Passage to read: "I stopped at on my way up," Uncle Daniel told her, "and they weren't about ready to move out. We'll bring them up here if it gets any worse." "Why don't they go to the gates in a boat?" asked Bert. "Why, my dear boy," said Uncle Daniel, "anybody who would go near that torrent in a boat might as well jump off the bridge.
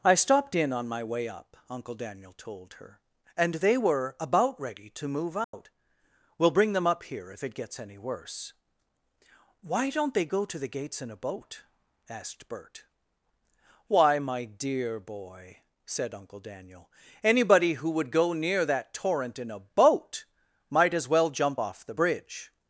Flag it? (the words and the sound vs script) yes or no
yes